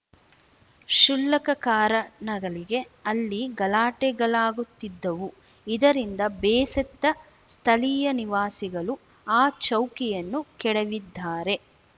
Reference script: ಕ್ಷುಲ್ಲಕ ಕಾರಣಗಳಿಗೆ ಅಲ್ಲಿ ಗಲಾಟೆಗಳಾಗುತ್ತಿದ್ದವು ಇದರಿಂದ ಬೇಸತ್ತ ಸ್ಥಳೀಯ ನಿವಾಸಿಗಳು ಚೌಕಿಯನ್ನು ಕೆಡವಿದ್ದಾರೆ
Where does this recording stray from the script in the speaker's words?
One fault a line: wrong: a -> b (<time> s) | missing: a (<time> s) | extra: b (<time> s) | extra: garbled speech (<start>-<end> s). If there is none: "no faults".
extra: ಆ (9.3 s)